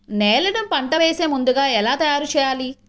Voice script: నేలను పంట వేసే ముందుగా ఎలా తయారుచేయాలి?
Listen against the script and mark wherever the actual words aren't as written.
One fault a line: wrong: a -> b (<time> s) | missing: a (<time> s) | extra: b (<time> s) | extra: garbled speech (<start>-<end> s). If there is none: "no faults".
no faults